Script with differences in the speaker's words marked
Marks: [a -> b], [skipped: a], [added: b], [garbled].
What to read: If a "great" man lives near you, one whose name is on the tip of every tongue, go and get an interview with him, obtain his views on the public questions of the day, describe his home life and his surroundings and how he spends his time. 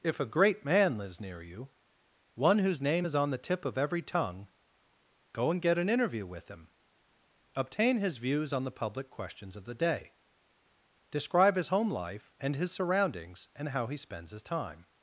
If a "great" man lives near you, one whose name is on the tip of every tongue, go and get an interview with him, obtain his views on the public questions of the day, describe his home life and his surroundings and how he spends his time.